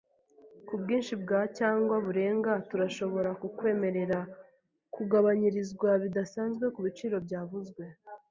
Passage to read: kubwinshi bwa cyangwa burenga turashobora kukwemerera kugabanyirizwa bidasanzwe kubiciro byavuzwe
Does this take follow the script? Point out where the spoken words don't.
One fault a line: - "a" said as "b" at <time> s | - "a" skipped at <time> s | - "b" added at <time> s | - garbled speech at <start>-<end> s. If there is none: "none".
none